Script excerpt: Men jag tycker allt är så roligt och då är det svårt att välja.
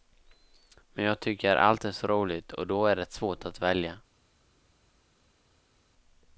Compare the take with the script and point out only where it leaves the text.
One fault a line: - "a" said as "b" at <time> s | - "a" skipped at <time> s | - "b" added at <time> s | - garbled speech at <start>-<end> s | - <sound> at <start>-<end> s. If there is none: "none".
none